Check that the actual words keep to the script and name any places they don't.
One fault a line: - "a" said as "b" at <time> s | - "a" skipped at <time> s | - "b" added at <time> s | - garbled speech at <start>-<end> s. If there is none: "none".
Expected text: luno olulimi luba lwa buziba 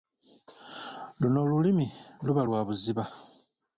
none